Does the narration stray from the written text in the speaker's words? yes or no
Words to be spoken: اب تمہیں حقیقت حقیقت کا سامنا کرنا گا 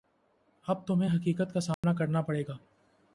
yes